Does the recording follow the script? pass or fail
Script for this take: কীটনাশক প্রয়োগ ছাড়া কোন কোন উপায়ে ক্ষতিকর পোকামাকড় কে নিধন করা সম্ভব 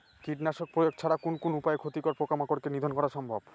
pass